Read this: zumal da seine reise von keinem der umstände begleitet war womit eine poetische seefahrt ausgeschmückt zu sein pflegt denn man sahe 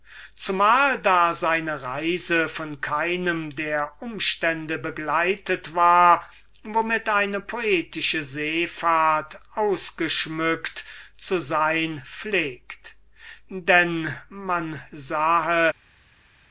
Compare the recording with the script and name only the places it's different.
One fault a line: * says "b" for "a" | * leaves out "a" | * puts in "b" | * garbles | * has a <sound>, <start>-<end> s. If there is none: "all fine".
all fine